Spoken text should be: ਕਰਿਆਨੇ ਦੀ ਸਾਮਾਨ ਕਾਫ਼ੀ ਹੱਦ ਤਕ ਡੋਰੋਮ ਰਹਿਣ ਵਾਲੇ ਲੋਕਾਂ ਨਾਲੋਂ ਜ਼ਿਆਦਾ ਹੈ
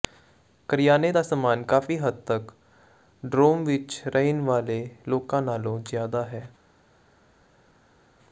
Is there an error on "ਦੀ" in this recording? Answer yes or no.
yes